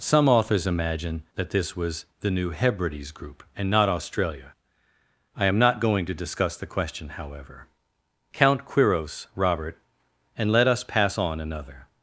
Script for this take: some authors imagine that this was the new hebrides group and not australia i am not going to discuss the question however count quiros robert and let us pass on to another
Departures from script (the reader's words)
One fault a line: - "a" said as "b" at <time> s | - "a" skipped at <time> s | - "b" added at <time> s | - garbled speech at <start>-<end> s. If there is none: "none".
- "to" skipped at 11.4 s